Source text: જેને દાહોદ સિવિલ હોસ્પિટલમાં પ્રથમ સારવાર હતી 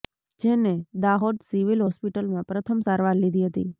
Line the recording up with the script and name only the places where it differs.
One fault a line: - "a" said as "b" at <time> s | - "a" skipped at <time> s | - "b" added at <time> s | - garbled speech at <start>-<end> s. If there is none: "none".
- "લીધી" added at 3.2 s